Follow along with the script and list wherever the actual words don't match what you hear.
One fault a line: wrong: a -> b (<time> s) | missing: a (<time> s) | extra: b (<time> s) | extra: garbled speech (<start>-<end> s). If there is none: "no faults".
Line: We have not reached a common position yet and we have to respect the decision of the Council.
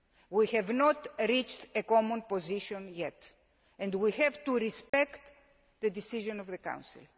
no faults